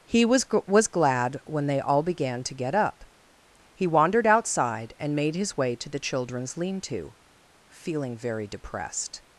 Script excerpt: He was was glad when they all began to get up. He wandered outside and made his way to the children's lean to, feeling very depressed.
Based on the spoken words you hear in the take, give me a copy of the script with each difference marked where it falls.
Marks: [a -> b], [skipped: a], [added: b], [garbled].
He was was glad when they all began to get up. He wandered outside and made his way to the children's lean to, feeling very depressed.